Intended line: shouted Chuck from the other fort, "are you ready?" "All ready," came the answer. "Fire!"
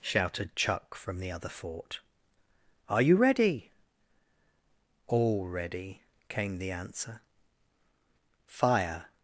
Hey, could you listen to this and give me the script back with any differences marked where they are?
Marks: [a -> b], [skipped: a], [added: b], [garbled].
shouted Chuck from the other fort, "are you ready?" "All ready," came the answer. "Fire!"